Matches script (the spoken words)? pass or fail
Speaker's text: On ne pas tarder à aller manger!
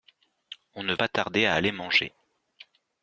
pass